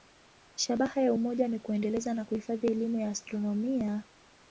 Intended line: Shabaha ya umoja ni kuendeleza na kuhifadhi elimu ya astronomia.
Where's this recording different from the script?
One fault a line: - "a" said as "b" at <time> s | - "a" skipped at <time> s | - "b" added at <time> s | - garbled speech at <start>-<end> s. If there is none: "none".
none